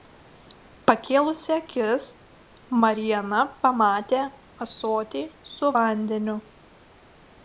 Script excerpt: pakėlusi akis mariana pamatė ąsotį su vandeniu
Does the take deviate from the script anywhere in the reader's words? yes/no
no